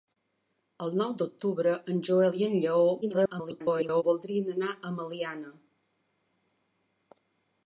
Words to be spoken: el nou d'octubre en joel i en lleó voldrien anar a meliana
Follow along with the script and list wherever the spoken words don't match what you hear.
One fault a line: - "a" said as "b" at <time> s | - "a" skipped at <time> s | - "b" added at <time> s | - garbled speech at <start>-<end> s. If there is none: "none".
- garbled speech at 3.0-4.0 s